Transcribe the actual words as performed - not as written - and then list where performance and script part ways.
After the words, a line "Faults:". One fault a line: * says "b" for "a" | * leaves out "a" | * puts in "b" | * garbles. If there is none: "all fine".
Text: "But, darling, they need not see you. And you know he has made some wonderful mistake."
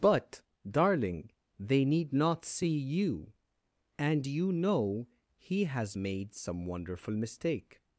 "But, darling, they need not see you. And you know he has made some wonderful mistake."
Faults:
all fine